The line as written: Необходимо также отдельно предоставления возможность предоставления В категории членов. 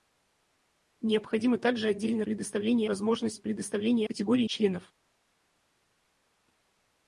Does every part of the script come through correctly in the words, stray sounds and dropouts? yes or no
yes